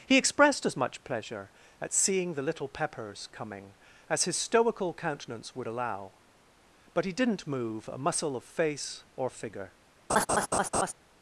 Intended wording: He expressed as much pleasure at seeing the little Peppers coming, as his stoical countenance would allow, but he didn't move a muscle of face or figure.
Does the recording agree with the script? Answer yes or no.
yes